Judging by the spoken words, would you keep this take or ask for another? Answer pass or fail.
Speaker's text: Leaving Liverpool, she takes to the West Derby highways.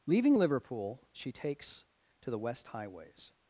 fail